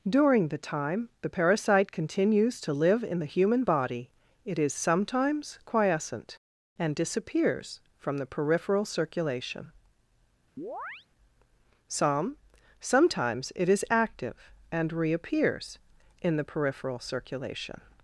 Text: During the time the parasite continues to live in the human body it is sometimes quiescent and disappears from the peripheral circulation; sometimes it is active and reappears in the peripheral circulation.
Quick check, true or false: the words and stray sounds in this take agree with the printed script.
false